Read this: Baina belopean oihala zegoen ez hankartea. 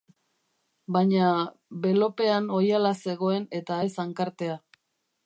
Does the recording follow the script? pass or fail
fail